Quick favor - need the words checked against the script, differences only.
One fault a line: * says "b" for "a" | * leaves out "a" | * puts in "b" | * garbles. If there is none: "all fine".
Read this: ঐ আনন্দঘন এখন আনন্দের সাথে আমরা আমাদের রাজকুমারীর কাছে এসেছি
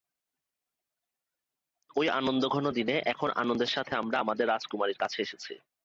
* puts in "দিনে"